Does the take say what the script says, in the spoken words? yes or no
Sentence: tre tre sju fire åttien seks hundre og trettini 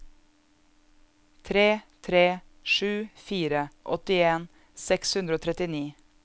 yes